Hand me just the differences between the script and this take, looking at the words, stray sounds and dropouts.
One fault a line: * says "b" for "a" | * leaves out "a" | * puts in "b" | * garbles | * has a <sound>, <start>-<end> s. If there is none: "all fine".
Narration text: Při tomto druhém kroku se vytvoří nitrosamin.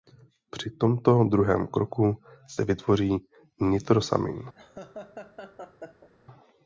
* has a laugh, 4.5-6.1 s